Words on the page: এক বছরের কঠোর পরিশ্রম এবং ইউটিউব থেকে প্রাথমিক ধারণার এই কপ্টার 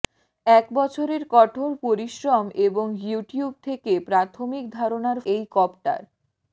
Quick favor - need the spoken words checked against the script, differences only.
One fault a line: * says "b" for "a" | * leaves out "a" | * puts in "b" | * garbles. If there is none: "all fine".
all fine